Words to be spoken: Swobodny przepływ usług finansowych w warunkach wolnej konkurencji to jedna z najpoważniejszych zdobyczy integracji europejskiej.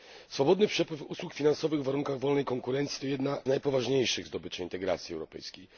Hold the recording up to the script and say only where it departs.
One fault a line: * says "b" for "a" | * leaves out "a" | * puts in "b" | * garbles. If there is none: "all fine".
* leaves out "z"